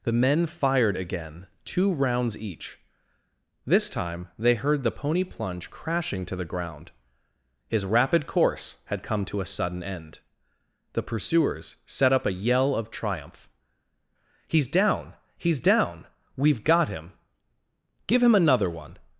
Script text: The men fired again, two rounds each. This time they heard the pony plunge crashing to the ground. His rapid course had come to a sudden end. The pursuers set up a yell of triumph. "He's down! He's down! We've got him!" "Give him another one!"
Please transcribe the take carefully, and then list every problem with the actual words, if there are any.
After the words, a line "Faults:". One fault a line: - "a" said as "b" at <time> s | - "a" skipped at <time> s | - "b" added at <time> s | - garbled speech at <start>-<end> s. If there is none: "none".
The men fired again, two rounds each. This time they heard the pony plunge crashing to the ground. His rapid course had come to a sudden end. The pursuers set up a yell of triumph. "He's down! He's down! We've got him!" "Give him another one!"
Faults:
none